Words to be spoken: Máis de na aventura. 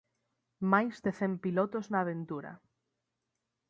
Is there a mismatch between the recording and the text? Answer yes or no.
yes